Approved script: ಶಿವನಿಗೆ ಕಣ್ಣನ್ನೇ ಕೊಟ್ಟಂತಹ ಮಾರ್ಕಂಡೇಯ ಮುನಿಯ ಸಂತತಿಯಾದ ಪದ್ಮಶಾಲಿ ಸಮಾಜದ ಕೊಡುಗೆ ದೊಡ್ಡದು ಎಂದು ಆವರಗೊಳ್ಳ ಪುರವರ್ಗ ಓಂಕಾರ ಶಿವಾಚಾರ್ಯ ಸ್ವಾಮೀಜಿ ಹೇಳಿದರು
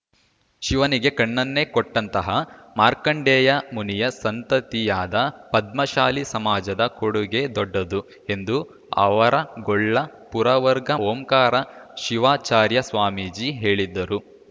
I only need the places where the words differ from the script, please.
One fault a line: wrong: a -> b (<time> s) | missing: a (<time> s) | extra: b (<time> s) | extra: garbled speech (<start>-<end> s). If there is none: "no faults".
no faults